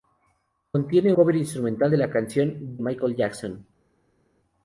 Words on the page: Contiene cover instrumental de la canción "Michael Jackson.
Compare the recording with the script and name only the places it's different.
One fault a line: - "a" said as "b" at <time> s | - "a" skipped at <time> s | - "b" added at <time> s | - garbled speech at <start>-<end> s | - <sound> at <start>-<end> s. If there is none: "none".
none